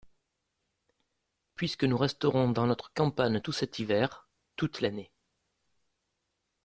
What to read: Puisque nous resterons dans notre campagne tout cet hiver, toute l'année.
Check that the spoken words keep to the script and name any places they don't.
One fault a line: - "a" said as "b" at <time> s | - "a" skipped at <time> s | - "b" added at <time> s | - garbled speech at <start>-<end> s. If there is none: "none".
none